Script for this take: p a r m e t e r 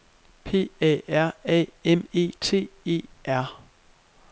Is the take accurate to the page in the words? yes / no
no